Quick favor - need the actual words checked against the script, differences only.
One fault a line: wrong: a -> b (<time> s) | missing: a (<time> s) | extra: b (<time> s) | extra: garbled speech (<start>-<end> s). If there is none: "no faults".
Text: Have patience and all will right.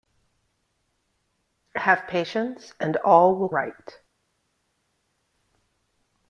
no faults